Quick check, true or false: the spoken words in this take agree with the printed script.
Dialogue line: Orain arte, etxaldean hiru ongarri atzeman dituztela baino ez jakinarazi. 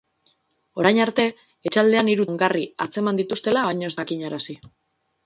true